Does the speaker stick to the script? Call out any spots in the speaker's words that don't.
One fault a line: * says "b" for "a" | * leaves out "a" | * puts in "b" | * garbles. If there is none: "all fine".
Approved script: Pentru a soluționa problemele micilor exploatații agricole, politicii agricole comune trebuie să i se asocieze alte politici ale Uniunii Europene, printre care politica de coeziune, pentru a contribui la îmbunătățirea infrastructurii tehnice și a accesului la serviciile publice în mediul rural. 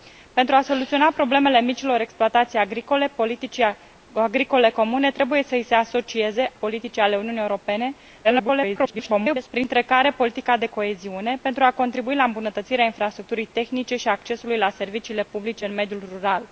* leaves out "alte"
* garbles